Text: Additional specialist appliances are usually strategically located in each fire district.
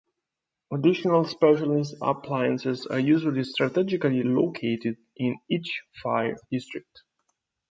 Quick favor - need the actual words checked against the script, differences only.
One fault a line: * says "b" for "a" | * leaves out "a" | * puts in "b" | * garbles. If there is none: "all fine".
all fine